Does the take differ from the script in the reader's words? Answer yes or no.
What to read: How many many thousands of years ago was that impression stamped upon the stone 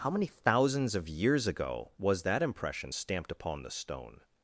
yes